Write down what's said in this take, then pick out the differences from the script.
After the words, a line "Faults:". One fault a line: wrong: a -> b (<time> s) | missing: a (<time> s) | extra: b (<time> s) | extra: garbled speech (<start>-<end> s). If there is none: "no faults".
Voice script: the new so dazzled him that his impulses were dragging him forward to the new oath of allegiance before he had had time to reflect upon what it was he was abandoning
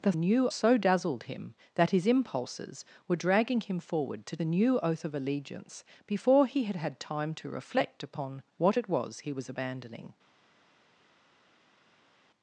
the new so dazzled him that his impulses were dragging him forward to the new oath of allegiance before he had had time to reflect upon what it was he was abandoning
Faults:
no faults